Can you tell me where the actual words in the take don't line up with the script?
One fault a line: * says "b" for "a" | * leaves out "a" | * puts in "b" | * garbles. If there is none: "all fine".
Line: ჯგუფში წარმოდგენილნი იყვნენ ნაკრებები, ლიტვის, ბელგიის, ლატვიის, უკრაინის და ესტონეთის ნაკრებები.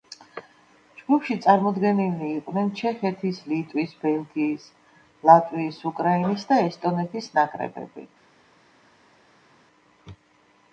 * says "ჩეხეთის" for "ნაკრებები"